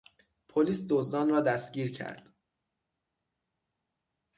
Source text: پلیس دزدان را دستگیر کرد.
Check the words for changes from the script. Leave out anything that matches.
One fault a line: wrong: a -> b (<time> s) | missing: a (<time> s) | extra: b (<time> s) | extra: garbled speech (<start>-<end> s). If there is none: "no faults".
no faults